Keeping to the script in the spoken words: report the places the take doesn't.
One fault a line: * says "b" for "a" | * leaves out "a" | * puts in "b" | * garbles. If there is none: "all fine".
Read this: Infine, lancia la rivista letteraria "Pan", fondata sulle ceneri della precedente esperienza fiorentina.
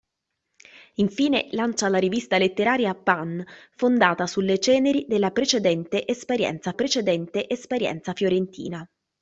* puts in "precedente esperienza"